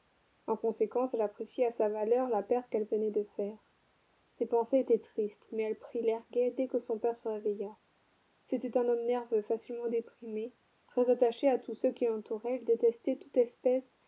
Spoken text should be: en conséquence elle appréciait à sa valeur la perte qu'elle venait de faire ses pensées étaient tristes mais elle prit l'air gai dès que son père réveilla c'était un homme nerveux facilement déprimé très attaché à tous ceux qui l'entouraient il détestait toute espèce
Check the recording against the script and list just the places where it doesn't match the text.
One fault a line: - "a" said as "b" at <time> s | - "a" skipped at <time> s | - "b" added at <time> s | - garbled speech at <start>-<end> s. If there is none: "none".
- "se" added at 7.2 s